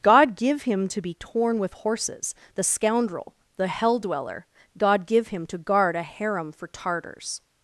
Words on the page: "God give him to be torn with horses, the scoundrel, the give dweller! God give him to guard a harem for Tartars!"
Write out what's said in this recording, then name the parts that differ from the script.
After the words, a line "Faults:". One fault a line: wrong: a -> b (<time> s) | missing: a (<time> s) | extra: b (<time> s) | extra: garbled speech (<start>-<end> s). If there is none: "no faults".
"God give him to be torn with horses, the scoundrel, the hell dweller! God give him to guard a harem for Tartars!"
Faults:
wrong: give -> hell (3.7 s)